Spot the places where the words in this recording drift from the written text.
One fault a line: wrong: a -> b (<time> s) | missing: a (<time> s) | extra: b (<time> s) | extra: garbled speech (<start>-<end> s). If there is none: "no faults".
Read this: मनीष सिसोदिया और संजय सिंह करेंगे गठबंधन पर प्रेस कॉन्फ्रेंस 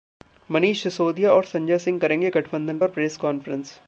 no faults